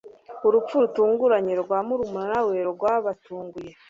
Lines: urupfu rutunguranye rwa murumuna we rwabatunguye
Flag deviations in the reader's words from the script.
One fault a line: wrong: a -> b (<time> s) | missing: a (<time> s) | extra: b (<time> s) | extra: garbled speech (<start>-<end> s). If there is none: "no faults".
no faults